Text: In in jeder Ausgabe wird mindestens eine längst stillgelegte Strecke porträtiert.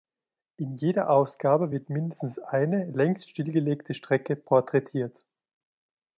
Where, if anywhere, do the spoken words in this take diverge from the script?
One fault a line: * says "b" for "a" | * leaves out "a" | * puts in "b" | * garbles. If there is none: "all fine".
* leaves out "in"